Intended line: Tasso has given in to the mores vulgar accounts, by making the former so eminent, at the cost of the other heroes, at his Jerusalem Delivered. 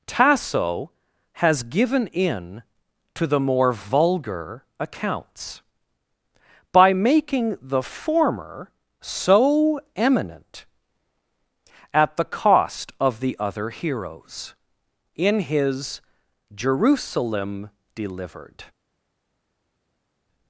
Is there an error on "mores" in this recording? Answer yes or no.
yes